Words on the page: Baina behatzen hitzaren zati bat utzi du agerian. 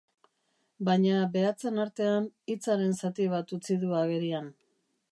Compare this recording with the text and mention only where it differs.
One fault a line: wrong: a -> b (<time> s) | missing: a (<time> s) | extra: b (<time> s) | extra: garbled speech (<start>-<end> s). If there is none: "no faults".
extra: artean (1.9 s)